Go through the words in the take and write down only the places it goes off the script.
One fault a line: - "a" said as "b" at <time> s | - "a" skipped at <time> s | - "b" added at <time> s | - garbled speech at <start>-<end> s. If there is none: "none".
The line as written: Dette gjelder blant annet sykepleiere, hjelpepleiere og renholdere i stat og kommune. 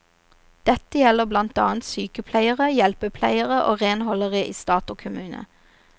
none